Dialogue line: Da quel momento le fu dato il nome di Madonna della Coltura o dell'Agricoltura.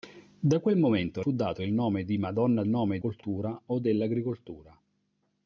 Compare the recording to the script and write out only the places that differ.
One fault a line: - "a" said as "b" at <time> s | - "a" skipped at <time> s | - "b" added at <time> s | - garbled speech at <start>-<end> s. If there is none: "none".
- "le" skipped at 1.2 s
- "della" said as "nome" at 2.7 s